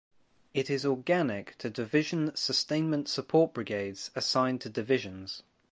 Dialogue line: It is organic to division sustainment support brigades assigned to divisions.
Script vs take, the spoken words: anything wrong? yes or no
no